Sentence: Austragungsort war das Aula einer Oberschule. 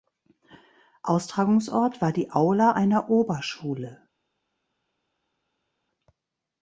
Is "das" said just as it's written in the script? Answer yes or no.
no